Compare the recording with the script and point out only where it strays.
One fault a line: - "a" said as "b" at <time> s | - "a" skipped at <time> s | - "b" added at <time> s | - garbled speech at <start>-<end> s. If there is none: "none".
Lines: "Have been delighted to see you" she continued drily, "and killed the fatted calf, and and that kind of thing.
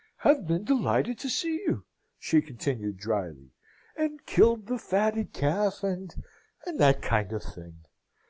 none